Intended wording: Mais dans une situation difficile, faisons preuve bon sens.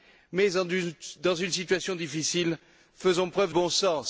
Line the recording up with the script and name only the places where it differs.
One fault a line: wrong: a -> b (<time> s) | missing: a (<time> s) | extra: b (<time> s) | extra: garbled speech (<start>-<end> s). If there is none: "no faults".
no faults